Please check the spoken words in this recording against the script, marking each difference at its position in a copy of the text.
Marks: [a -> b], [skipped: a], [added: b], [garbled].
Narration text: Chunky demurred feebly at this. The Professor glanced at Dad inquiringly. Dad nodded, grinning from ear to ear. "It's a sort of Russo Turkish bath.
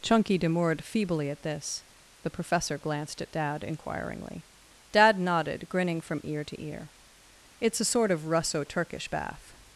Chunky demurred feebly at this. The Professor glanced at Dad inquiringly. Dad nodded, grinning from ear to ear. "It's a sort of Russo Turkish bath.